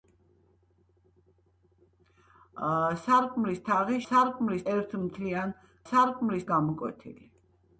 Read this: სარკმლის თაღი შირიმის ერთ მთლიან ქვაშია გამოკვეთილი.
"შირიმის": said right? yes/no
no